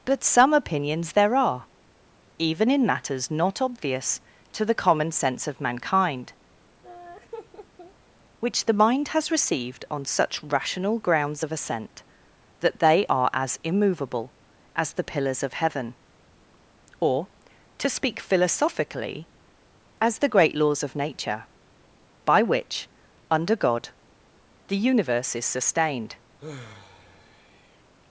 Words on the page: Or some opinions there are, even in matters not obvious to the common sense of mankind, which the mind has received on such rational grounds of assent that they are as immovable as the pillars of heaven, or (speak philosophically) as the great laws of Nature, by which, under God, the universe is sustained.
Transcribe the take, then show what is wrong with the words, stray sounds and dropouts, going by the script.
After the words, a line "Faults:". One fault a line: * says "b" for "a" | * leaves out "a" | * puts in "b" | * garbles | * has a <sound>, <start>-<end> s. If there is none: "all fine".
But some opinions there are, even in matters not obvious to the common sense of mankind, which the mind has received on such rational grounds of assent that they are as immovable as the pillars of heaven, or (to speak philosophically) as the great laws of Nature, by which, under God, the universe is sustained.
Faults:
* says "But" for "Or"
* has a laugh, 6.8-7.9 s
* puts in "to"
* has a sigh, 26.4-27.8 s